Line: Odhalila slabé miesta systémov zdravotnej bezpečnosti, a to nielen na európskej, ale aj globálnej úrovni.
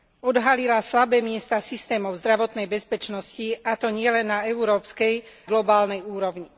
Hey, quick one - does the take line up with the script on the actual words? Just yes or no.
no